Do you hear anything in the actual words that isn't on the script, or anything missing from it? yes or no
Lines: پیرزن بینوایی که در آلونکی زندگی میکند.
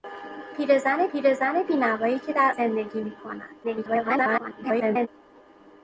yes